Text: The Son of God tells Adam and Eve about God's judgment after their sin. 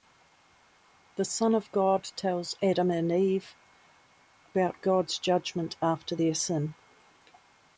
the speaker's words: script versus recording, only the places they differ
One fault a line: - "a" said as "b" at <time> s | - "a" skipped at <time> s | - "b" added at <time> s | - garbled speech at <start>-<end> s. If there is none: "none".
none